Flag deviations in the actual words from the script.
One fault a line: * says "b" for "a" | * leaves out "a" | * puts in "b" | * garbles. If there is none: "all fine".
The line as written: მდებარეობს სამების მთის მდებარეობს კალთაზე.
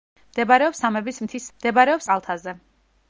all fine